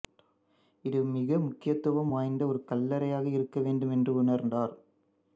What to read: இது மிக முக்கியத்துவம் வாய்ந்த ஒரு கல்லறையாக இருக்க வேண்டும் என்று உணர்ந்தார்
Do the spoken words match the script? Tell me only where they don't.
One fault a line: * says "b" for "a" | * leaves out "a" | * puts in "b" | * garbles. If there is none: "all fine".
all fine